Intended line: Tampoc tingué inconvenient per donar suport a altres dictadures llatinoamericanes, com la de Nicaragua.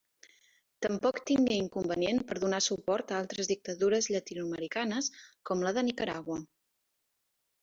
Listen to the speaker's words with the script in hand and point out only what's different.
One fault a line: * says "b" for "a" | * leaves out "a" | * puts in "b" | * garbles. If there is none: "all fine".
all fine